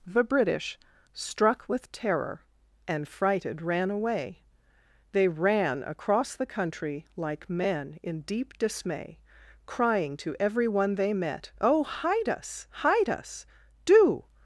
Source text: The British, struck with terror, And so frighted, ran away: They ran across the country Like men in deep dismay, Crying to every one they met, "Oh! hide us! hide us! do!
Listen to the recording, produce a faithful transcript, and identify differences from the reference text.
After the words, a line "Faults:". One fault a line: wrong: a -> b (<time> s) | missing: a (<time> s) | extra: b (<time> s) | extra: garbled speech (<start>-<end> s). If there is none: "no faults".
The British, struck with terror, And frighted, ran away: They ran across the country Like men in deep dismay, Crying to every one they met, "Oh! hide us! hide us! do!
Faults:
missing: so (3.1 s)